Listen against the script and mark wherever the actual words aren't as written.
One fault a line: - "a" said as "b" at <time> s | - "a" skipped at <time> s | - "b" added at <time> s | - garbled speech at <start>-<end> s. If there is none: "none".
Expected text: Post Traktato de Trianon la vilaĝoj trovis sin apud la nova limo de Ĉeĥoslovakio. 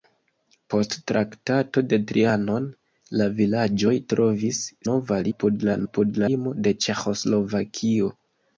- "sin" said as "nova" at 4.9 s
- "nova" said as "apud" at 5.9 s